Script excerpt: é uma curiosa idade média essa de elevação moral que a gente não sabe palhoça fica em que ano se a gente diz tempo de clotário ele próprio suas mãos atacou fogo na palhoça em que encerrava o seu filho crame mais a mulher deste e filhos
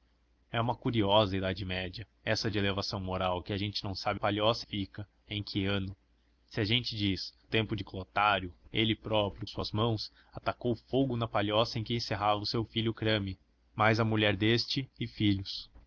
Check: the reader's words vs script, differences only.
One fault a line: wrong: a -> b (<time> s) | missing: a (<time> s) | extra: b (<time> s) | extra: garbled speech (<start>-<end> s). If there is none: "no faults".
no faults